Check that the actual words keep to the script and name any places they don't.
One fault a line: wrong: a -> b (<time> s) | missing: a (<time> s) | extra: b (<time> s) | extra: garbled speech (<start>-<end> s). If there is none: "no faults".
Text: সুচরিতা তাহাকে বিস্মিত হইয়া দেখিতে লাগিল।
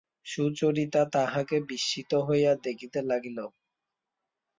no faults